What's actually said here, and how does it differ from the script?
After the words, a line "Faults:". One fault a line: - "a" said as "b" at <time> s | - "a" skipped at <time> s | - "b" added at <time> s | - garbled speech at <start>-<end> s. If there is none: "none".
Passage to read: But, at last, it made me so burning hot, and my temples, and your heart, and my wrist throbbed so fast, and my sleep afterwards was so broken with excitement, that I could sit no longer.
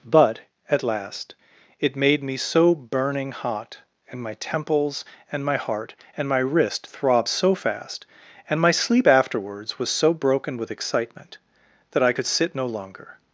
But, at last, it made me so burning hot, and my temples, and my heart, and my wrist throbbed so fast, and my sleep afterwards was so broken with excitement, that I could sit no longer.
Faults:
- "your" said as "my" at 5.5 s